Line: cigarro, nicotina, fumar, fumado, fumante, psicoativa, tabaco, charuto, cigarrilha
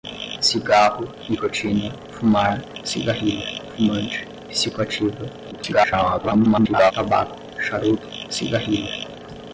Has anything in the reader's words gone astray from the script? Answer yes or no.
yes